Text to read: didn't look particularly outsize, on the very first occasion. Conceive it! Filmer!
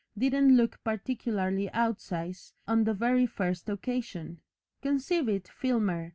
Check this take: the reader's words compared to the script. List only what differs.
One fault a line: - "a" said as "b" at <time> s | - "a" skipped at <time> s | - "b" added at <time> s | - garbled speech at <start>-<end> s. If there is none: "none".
none